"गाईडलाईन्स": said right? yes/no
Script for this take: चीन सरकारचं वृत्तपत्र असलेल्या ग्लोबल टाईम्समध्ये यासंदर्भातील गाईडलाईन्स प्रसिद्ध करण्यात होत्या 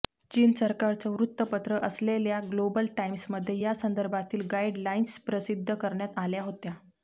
yes